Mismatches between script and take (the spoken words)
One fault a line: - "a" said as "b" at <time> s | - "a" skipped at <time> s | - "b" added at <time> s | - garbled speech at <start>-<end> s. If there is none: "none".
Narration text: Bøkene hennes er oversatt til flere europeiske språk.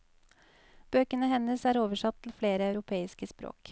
none